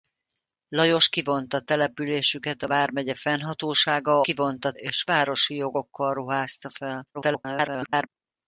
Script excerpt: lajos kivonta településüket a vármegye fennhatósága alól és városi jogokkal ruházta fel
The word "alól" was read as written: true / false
false